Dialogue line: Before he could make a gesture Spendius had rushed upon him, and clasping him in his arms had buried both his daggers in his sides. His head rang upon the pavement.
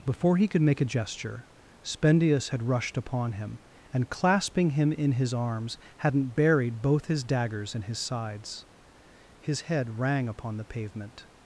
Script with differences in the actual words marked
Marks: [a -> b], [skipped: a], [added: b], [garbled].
Before he could make a gesture Spendius had rushed upon him, and clasping him in his arms [had -> hadn't] buried both his daggers in his sides. His head rang upon the pavement.